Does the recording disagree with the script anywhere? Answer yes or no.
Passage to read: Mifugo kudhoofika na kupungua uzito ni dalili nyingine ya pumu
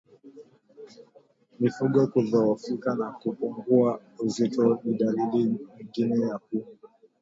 no